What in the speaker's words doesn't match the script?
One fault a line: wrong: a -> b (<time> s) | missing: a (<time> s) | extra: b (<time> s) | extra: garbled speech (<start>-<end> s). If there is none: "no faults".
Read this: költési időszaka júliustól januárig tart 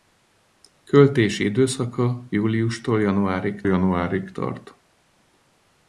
extra: januárig (3.7 s)